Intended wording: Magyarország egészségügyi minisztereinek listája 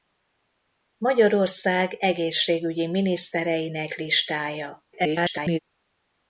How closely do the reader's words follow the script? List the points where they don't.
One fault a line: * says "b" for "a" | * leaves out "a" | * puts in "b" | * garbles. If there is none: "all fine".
* garbles